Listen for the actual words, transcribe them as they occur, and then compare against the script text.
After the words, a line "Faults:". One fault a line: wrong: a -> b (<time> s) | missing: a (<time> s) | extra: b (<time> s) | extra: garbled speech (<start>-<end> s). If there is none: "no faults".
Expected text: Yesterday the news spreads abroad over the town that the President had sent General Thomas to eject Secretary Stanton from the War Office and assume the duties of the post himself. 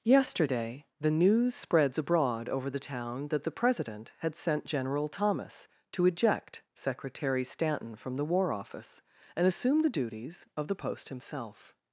Yesterday the news spreads abroad over the town that the President had sent General Thomas to eject Secretary Stanton from the War Office and assume the duties of the post himself.
Faults:
no faults